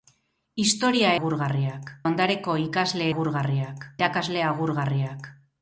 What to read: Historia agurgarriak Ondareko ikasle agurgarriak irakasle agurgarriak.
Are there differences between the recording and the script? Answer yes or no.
no